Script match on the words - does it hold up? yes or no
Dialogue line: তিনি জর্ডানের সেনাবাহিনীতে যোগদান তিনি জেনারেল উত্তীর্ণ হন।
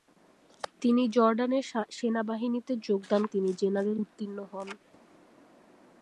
yes